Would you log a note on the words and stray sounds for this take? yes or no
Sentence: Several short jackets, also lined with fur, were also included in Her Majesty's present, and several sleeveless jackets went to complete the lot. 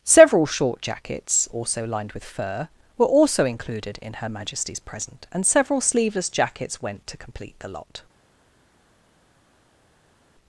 no